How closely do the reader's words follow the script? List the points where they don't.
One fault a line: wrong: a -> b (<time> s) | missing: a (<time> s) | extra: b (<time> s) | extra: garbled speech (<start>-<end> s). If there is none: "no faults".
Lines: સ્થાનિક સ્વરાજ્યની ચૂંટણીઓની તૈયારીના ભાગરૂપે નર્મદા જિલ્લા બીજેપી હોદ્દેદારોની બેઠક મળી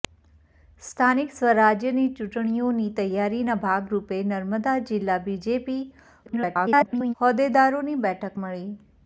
extra: garbled speech (6.3-7.1 s)